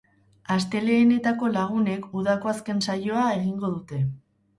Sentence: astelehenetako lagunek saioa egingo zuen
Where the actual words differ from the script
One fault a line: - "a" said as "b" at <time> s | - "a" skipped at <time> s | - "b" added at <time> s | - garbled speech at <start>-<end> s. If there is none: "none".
- "udako azken" added at 2.2 s
- "zuen" said as "dute" at 3.8 s